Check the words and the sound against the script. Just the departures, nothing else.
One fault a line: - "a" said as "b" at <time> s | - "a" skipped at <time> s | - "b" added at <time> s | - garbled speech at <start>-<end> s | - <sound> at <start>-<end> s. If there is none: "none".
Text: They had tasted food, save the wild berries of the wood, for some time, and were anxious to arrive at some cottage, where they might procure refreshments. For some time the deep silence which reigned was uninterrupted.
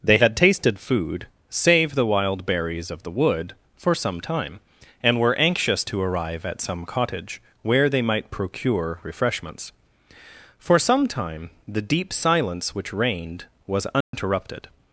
- dropout at 14.0-14.1 s